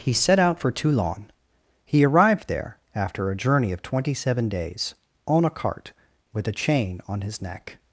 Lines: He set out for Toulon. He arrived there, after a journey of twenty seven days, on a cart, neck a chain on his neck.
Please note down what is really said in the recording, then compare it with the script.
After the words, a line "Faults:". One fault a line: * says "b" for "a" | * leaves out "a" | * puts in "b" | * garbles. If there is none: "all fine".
He set out for Toulon. He arrived there, after a journey of twenty seven days, on a cart, with a chain on his neck.
Faults:
* says "with" for "neck"